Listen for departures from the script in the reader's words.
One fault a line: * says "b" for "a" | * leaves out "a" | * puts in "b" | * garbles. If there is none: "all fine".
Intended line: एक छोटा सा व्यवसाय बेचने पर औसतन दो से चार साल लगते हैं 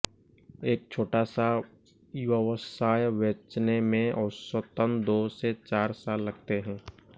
* says "में" for "पर"